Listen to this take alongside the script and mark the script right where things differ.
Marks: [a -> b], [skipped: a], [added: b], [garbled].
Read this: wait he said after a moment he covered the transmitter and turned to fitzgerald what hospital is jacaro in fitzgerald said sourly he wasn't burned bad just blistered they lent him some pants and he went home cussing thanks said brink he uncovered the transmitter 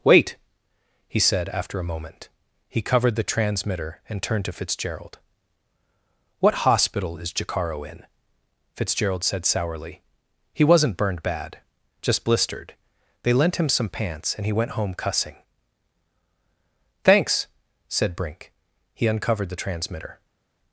wait he said after a moment he covered the transmitter and turned to fitzgerald what hospital is jacaro in fitzgerald said sourly he wasn't burned bad just blistered they lent him some pants and he went home cussing thanks said brink he uncovered the transmitter